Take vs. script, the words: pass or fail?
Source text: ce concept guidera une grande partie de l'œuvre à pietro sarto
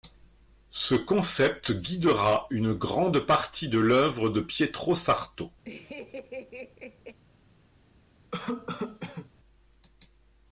fail